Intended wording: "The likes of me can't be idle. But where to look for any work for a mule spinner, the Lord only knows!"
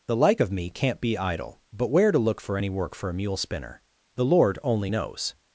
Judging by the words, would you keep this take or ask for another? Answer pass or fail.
fail